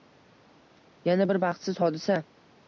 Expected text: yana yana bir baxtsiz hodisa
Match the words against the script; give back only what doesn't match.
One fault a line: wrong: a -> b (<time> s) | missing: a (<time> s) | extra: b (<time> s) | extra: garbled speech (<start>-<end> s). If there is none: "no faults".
missing: yana (1.3 s)